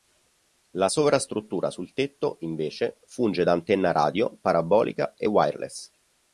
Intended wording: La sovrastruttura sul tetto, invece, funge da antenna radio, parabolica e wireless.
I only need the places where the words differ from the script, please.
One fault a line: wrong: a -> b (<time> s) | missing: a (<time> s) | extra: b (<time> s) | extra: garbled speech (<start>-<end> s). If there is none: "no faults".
no faults